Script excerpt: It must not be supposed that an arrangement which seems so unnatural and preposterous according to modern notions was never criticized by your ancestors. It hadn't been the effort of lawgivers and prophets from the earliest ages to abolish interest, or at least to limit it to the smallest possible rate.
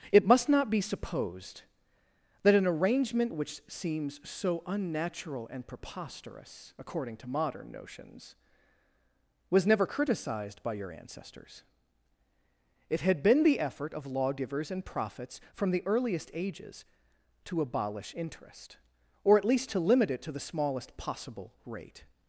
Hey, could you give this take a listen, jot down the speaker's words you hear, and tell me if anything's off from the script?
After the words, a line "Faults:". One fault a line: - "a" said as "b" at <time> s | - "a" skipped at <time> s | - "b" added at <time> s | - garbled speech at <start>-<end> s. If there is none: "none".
It must not be supposed that an arrangement which seems so unnatural and preposterous according to modern notions was never criticized by your ancestors. It had been the effort of lawgivers and prophets from the earliest ages to abolish interest, or at least to limit it to the smallest possible rate.
Faults:
- "hadn't" said as "had" at 13.0 s